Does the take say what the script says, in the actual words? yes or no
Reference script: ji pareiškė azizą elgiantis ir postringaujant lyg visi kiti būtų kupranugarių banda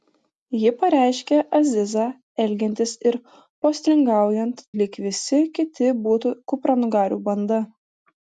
yes